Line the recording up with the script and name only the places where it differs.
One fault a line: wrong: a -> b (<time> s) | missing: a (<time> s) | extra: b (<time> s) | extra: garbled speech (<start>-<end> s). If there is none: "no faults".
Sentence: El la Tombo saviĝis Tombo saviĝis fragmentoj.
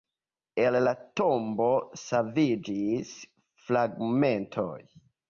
missing: Tombo saviĝis (3.1 s)